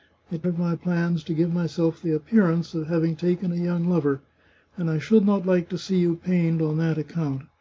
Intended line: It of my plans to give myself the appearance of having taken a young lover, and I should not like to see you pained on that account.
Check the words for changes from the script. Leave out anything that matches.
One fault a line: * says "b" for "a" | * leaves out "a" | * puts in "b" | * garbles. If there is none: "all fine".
all fine